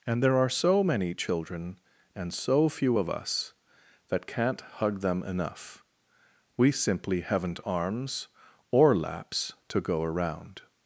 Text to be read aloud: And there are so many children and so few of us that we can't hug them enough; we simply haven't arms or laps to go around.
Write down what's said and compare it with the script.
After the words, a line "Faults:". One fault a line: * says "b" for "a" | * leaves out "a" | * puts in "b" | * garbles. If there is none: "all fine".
And there are so many children and so few of us that can't hug them enough; we simply haven't arms or laps to go around.
Faults:
* leaves out "we"